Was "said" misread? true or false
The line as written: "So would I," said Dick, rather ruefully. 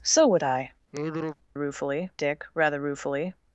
true